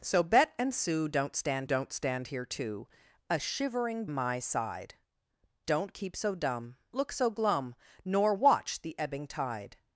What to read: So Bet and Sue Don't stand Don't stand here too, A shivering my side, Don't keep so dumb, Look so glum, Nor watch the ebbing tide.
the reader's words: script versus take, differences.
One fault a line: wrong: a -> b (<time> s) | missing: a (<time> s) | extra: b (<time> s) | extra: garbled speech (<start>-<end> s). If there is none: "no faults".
no faults